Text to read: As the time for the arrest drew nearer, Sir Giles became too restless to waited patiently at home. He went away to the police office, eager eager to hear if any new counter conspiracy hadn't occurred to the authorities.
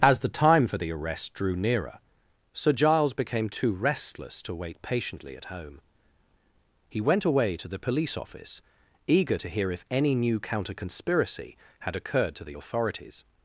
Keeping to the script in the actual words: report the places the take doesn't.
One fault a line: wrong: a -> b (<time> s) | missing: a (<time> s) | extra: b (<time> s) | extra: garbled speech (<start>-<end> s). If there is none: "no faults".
wrong: waited -> wait (4.5 s)
missing: eager (9.4 s)
wrong: hadn't -> had (11.8 s)